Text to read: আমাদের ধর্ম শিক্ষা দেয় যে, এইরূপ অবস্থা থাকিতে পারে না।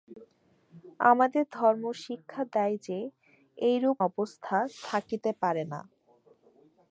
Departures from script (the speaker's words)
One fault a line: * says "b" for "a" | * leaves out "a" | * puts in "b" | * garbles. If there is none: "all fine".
all fine